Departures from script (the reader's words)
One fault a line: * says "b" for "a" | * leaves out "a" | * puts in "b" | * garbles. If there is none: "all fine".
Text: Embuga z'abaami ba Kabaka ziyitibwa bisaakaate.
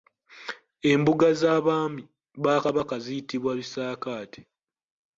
all fine